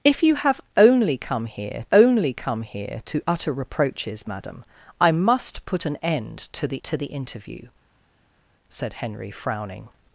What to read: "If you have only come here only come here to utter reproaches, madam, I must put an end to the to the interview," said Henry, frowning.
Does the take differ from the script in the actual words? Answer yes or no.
no